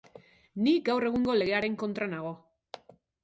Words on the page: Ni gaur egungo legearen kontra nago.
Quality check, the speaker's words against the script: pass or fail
pass